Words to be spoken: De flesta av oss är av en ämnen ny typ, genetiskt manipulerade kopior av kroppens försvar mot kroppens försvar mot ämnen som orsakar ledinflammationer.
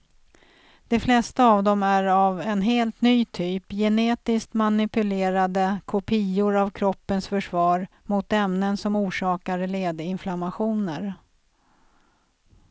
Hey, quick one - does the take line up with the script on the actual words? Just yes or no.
no